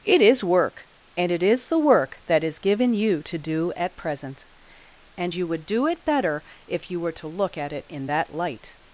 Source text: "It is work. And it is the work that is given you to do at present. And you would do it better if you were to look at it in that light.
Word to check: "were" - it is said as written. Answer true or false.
true